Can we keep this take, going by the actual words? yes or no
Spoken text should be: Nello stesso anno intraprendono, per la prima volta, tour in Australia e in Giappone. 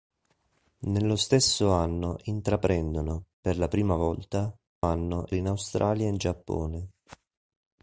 no